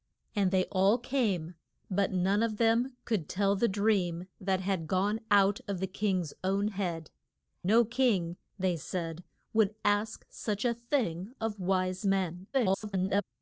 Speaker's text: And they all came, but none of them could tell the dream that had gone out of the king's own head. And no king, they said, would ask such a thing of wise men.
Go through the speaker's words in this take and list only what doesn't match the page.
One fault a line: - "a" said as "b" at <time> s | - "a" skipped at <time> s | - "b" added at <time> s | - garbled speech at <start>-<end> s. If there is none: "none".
- "And" skipped at 7.1 s
- garbled speech at 12.5-13.2 s